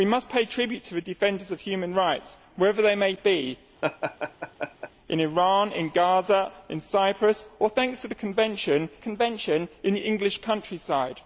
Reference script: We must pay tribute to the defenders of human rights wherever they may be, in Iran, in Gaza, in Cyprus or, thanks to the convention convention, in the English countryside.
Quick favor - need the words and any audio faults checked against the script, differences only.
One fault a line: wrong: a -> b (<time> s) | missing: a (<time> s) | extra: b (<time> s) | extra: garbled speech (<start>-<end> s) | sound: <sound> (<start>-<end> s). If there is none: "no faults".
sound: laugh (3.8-4.9 s)